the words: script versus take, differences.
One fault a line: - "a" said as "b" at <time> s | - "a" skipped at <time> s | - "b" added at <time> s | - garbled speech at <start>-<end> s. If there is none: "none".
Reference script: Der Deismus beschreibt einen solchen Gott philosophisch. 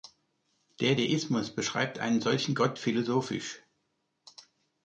none